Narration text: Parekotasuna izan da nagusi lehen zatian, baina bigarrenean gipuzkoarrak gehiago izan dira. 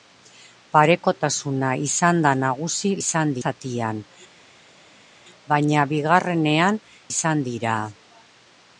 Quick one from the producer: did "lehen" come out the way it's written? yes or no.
no